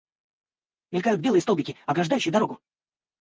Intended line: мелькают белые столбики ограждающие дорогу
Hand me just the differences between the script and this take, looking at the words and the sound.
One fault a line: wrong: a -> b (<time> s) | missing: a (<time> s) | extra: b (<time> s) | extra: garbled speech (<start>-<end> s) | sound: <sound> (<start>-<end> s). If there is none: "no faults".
no faults